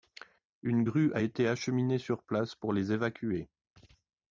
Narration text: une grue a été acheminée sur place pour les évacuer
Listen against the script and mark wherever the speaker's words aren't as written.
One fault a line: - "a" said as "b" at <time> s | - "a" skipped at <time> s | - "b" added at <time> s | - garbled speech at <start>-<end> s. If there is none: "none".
none